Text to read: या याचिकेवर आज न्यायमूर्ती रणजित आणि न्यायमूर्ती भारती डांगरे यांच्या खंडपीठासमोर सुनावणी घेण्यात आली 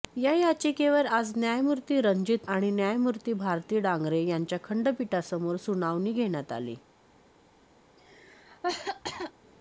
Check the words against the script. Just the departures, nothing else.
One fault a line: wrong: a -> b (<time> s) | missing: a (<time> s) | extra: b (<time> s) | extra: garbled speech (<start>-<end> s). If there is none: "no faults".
no faults